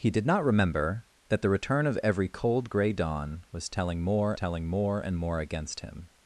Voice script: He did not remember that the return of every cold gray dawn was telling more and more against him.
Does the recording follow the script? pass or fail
fail